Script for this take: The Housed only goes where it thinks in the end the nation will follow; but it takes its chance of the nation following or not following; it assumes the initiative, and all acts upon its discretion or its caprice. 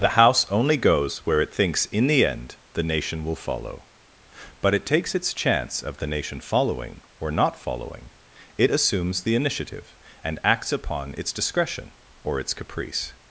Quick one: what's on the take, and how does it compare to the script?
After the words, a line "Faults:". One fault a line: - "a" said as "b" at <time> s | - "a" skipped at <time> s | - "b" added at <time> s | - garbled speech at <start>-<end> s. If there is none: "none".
The House only goes where it thinks in the end the nation will follow; but it takes its chance of the nation following or not following; it assumes the initiative, and acts upon its discretion or its caprice.
Faults:
- "Housed" said as "House" at 0.2 s
- "all" skipped at 10.4 s